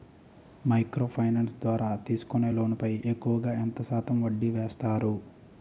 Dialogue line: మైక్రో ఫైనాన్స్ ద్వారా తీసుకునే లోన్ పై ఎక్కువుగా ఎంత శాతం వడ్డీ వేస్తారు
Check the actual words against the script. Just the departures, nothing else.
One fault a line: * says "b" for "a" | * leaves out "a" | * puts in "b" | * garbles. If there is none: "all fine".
all fine